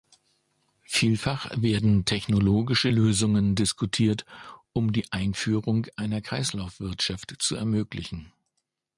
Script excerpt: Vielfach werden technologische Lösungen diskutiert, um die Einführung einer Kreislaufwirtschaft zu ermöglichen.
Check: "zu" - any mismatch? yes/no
no